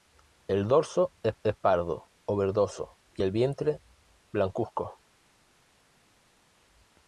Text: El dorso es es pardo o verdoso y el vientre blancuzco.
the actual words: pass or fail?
pass